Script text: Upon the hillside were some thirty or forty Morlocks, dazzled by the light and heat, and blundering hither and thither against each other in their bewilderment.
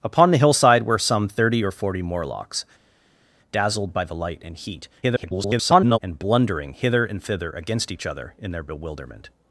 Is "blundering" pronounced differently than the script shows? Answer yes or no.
no